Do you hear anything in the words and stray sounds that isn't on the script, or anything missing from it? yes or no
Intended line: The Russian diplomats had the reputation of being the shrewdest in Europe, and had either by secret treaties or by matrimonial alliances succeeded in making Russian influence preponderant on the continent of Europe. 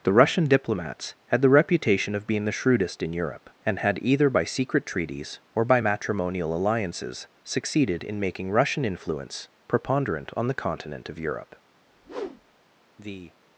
yes